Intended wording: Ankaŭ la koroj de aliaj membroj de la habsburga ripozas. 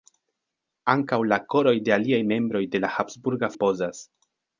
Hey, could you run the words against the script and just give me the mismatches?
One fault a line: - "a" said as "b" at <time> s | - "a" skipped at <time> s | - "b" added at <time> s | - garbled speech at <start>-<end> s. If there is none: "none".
none